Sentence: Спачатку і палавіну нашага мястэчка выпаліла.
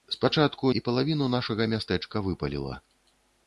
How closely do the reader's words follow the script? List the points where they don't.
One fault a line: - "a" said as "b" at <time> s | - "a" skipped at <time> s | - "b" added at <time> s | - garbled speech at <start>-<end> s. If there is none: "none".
none